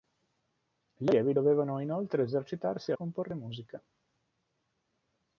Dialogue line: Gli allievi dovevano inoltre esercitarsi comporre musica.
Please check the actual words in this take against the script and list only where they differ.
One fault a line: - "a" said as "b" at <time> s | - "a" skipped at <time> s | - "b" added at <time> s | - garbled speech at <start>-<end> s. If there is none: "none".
none